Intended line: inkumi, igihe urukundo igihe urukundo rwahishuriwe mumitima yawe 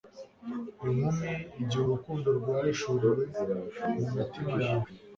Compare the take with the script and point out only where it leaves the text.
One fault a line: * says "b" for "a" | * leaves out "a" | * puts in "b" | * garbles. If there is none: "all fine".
* leaves out "igihe urukundo"